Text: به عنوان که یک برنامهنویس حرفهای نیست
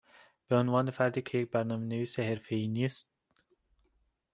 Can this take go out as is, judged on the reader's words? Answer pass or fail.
fail